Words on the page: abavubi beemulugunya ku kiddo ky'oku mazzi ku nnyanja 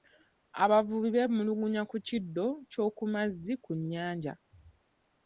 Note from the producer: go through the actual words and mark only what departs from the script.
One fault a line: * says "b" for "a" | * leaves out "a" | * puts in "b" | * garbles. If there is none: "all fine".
all fine